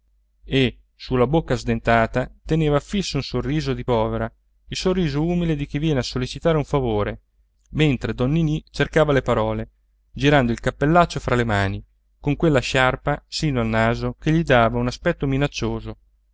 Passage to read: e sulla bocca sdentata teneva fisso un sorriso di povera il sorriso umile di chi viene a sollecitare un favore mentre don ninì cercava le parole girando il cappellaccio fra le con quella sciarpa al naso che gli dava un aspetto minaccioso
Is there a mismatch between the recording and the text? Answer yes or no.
yes